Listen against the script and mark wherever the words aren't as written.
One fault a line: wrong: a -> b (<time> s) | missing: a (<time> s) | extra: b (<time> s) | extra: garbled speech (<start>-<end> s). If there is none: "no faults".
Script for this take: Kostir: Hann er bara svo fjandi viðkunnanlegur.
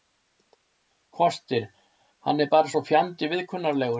no faults